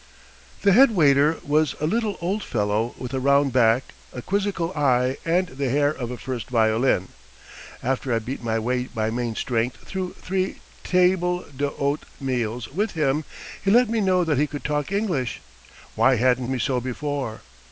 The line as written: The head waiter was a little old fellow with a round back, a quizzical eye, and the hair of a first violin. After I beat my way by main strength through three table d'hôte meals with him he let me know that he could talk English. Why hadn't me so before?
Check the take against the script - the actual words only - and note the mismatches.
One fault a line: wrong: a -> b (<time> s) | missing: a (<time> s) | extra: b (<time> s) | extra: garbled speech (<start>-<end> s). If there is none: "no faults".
no faults